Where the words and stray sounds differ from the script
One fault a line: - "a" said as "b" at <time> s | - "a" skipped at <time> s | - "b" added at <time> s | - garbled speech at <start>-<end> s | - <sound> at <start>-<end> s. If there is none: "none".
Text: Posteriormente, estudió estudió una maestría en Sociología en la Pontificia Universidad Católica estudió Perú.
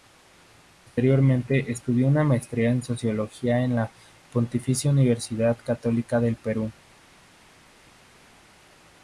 - "estudió" skipped at 2.1 s
- "estudió" said as "del" at 6.2 s